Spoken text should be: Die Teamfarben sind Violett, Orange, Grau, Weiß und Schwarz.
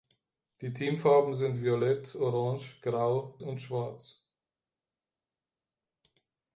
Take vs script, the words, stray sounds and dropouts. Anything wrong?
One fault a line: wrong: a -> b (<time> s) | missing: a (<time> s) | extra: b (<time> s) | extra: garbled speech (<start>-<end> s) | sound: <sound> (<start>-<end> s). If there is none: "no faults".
missing: Weiß (3.4 s)